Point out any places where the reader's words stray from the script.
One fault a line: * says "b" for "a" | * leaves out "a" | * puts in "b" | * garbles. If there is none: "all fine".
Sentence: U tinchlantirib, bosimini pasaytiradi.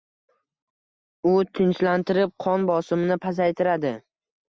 * puts in "qon"